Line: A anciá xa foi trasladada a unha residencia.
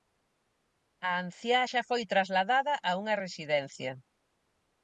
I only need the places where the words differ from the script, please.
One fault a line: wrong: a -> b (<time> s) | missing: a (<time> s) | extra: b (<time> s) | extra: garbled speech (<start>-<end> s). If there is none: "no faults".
no faults